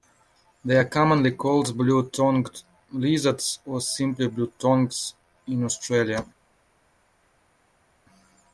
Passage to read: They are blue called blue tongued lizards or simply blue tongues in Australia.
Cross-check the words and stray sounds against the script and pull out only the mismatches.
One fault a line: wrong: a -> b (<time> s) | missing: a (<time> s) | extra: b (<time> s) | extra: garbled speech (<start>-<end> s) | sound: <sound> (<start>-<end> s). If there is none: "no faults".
wrong: blue -> commonly (0.8 s)